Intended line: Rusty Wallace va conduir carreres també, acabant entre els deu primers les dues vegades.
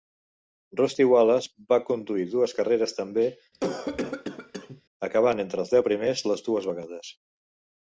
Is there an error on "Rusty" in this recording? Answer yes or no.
no